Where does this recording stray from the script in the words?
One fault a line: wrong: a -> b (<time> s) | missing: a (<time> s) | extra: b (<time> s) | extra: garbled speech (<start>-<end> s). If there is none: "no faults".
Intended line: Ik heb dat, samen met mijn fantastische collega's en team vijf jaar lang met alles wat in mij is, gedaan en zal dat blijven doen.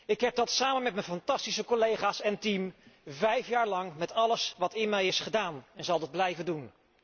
no faults